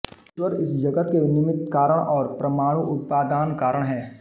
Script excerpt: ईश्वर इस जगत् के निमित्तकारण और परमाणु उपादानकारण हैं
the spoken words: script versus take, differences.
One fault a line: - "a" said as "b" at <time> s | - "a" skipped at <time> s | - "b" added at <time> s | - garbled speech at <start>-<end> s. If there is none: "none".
none